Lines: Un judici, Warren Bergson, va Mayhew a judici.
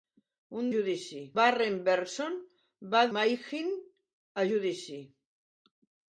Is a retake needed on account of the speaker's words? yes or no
no